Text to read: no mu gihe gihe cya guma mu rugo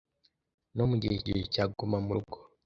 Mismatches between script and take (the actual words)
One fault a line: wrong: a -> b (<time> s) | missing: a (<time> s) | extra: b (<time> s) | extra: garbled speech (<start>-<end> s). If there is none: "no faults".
no faults